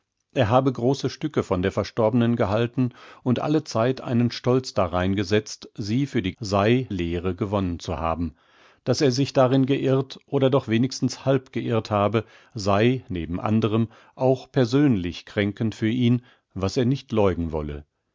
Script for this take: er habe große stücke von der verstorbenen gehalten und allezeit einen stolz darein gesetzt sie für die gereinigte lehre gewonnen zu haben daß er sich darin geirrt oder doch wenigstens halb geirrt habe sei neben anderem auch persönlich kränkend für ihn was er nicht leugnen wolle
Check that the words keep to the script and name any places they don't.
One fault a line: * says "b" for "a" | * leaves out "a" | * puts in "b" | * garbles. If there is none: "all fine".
* says "sei" for "gereinigte"